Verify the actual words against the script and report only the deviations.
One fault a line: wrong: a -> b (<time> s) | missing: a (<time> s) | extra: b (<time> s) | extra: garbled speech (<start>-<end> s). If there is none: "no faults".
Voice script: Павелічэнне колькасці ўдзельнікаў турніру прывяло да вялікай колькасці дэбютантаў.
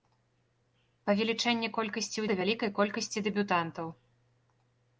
missing: ўдзельнікаў турніру прывяло (2.2 s)